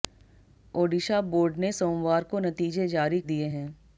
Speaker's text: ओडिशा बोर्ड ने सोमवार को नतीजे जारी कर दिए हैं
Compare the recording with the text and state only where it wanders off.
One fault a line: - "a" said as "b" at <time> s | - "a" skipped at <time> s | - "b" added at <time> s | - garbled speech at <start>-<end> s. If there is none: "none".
- "कर" skipped at 3.2 s